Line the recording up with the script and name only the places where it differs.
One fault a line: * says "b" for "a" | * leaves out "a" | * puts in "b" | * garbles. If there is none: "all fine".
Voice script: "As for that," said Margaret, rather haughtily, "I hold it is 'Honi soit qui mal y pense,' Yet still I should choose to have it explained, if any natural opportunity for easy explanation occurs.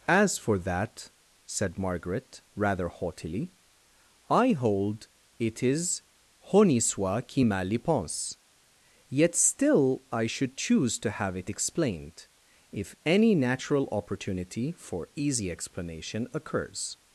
all fine